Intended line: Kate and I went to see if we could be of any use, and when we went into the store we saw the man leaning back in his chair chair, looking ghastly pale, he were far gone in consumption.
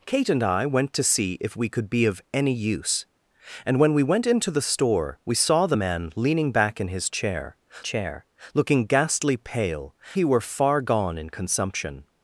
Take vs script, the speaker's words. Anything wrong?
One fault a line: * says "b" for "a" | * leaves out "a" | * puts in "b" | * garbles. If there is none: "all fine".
all fine